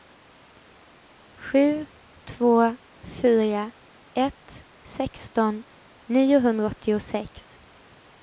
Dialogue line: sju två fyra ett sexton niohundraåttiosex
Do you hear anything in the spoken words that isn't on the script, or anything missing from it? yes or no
no